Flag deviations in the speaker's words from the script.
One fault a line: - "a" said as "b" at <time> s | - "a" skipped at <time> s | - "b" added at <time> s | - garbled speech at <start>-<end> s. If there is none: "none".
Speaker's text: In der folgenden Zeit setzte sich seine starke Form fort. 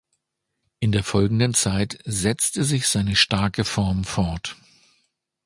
none